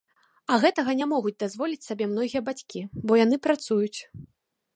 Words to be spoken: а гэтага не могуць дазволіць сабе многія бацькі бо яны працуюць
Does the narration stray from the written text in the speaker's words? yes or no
no